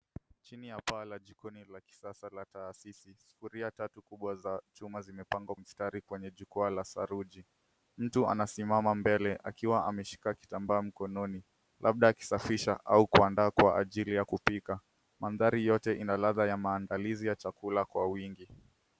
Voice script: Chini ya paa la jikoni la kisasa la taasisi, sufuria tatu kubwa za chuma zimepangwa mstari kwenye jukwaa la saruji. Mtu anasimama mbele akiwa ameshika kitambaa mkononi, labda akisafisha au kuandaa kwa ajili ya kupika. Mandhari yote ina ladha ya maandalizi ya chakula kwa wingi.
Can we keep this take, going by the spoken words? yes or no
yes